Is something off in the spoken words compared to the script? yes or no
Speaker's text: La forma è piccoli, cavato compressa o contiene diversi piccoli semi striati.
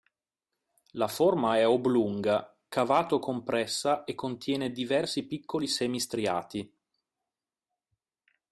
yes